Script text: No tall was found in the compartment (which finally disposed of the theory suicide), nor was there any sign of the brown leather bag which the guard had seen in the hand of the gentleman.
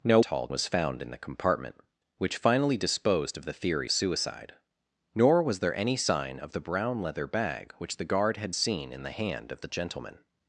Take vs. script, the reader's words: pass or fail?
pass